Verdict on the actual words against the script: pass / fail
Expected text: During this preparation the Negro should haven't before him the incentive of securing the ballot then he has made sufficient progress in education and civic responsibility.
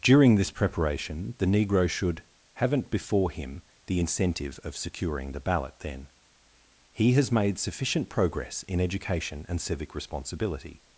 pass